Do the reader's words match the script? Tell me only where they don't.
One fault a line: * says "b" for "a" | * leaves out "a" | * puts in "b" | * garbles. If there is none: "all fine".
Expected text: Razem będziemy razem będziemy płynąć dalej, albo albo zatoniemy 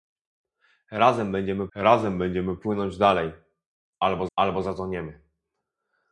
all fine